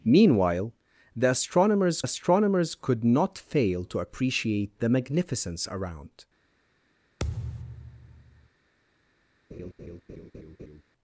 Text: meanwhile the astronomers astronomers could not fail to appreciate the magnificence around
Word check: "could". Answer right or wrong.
right